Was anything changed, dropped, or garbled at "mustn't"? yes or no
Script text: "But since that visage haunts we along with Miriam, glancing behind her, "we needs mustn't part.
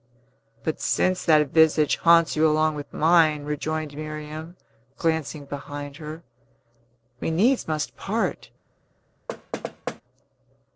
yes